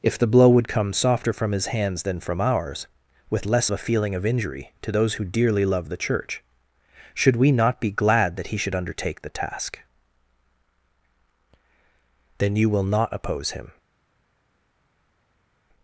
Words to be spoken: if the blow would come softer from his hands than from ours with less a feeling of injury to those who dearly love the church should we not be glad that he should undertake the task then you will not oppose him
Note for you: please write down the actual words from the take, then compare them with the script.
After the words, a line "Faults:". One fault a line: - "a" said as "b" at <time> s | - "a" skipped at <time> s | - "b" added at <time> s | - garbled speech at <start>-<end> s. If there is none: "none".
if the blow would come softer from his hands than from ours with less a feeling of injury to those who dearly love the church should we not be glad that he should undertake the task then you will not oppose him
Faults:
none